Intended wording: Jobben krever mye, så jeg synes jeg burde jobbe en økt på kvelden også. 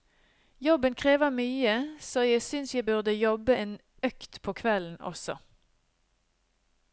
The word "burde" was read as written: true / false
true